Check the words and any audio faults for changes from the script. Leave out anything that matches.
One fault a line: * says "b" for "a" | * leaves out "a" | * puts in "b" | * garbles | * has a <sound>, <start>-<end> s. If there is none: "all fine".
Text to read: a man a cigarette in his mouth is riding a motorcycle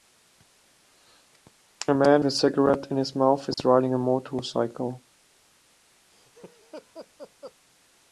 * has a dropout, 3.5-3.6 s
* has a laugh, 6.1-7.6 s